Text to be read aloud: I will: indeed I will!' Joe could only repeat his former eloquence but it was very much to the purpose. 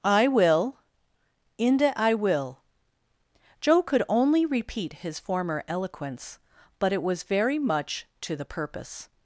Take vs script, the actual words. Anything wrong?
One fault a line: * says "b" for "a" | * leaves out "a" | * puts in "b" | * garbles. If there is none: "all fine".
* says "inde" for "indeed"